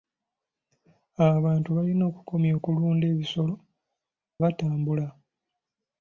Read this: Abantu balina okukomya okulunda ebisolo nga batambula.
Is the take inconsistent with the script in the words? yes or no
yes